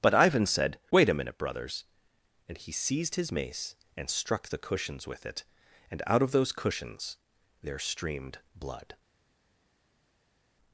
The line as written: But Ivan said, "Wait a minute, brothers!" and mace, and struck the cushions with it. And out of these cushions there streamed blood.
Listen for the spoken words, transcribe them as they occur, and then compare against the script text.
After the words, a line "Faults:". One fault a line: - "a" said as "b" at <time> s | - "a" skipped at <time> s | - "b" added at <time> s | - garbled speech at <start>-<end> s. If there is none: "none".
But Ivan said, "Wait a minute, brothers!" and he seized his mace, and struck the cushions with it. And out of those cushions there streamed blood.
Faults:
- "he seized his" added at 2.6 s
- "these" said as "those" at 6.3 s